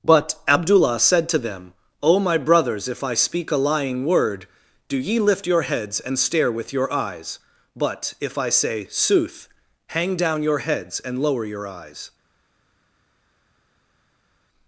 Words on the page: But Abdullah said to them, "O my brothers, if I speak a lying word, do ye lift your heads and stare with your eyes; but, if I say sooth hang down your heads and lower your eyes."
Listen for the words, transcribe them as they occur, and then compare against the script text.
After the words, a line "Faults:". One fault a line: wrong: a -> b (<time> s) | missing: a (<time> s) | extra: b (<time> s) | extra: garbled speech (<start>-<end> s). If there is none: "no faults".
But Abdullah said to them, "O my brothers, if I speak a lying word, do ye lift your heads and stare with your eyes; but, if I say sooth hang down your heads and lower your eyes."
Faults:
no faults